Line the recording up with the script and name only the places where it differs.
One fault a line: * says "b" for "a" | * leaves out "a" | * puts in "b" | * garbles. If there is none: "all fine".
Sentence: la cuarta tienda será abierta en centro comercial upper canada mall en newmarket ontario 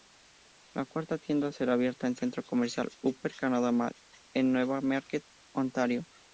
all fine